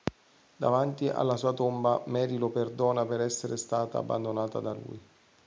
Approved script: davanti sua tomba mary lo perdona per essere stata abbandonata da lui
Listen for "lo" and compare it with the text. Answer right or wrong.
right